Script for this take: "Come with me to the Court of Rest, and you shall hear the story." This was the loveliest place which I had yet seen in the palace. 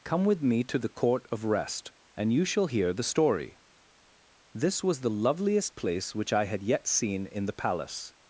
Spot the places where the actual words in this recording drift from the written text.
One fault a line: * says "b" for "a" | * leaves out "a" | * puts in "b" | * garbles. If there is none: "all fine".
all fine